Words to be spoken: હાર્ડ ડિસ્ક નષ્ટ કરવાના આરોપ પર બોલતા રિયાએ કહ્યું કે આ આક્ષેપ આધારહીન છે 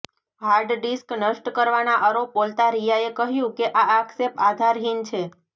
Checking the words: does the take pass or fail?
fail